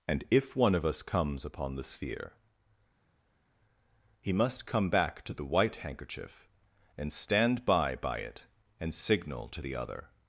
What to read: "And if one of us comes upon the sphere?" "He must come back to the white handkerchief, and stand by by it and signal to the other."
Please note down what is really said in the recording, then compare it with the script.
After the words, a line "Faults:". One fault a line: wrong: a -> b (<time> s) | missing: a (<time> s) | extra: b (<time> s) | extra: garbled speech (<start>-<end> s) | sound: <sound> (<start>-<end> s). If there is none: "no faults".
"And if one of us comes upon the sphere?" "He must come back to the white handkerchief, and stand by by it and signal to the other."
Faults:
no faults